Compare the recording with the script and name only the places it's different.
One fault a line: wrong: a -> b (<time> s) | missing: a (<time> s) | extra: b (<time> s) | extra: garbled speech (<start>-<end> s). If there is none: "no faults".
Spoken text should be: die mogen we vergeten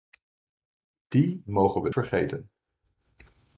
no faults